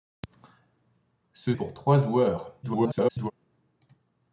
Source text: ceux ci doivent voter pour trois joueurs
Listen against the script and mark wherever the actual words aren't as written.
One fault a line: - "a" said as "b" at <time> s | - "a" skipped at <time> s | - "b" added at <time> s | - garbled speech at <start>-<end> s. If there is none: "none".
- "ci doivent voter" skipped at 1.5 s
- garbled speech at 2.6-3.3 s